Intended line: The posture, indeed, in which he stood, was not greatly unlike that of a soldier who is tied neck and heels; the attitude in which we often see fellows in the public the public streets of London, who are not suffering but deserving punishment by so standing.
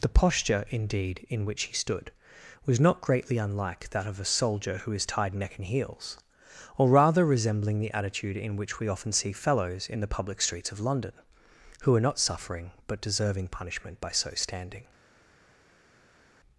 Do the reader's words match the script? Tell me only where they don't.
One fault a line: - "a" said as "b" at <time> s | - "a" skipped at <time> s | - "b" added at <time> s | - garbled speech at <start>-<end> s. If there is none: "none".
- "or rather resembling" added at 6.8 s
- "the public" skipped at 10.4 s